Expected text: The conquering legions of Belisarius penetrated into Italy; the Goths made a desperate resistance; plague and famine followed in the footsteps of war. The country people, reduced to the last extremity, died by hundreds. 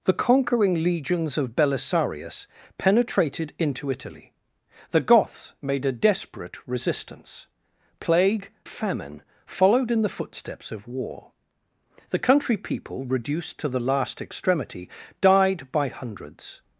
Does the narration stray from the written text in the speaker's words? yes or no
yes